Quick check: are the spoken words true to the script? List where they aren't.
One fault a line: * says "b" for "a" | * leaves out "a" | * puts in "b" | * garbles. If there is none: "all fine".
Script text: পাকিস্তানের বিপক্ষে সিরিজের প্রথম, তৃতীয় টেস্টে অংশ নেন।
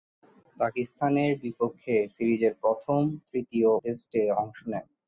all fine